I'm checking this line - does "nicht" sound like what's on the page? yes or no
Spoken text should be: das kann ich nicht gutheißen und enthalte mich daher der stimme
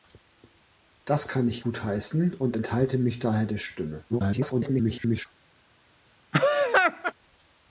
no